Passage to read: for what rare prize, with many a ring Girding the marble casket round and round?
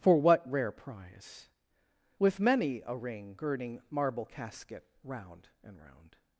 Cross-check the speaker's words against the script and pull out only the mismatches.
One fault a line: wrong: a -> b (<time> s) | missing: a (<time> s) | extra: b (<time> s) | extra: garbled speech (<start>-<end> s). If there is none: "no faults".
missing: the (3.8 s)